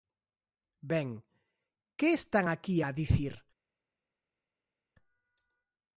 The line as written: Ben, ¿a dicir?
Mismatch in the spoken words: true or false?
true